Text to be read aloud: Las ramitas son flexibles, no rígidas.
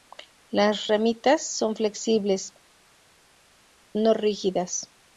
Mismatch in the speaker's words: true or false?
false